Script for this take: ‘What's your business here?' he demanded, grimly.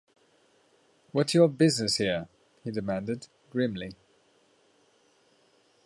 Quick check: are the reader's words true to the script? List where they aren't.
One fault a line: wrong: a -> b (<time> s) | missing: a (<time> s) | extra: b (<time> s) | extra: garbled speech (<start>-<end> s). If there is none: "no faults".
no faults